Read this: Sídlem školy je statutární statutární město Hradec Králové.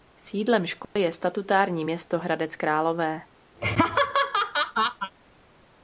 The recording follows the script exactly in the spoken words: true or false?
false